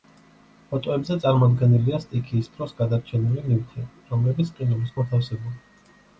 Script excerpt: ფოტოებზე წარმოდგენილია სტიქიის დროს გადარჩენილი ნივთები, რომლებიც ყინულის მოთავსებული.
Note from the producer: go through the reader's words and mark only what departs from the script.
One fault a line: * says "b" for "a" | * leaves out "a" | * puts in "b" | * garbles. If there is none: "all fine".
all fine